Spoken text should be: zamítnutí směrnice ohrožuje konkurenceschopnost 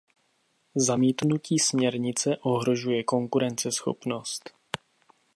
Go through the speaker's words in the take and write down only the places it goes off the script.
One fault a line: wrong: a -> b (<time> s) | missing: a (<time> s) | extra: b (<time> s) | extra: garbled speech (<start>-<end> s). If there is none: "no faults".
no faults